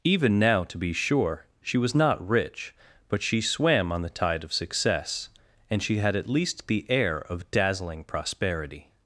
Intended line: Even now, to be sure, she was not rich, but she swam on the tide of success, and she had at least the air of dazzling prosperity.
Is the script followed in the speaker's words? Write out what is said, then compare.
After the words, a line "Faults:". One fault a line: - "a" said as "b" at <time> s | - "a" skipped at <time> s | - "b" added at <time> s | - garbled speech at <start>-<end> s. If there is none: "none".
Even now, to be sure, she was not rich, but she swam on the tide of success, and she had at least the air of dazzling prosperity.
Faults:
none